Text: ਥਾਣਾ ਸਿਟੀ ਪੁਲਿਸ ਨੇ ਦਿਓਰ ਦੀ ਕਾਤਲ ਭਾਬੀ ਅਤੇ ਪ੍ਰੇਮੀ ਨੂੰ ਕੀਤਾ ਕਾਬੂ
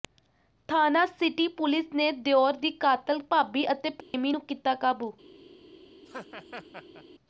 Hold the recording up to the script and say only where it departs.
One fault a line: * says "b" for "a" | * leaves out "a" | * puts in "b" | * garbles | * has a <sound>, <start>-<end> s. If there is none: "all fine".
* has a dropout, 4.0-4.1 s
* has a laugh, 6.0-7.0 s